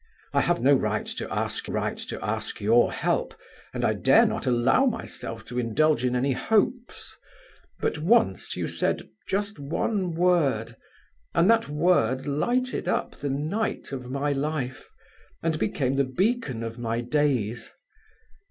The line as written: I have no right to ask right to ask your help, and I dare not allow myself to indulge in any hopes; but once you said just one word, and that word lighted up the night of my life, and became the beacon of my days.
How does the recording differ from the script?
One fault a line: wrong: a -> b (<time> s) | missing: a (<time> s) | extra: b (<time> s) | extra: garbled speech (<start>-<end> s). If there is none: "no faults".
no faults